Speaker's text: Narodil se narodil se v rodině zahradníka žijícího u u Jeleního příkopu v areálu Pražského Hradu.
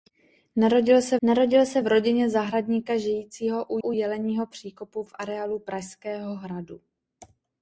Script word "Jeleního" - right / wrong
right